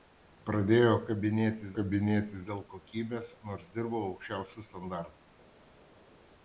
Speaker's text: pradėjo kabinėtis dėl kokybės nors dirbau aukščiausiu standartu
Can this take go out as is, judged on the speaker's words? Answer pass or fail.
fail